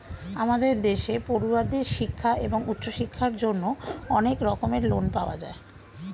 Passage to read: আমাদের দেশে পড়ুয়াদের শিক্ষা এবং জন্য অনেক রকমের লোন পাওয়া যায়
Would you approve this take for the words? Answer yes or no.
no